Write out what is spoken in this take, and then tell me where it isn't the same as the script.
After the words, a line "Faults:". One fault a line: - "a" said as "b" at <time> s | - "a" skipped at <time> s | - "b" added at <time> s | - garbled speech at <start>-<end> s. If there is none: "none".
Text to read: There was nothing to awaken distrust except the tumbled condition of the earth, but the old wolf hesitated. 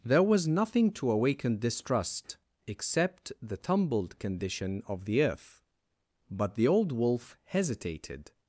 There was nothing to awaken distrust except the tumbled condition of the earth, but the old wolf hesitated.
Faults:
none